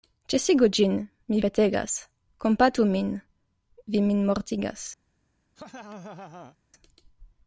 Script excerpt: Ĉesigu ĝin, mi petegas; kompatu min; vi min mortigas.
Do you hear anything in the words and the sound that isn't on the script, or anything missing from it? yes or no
yes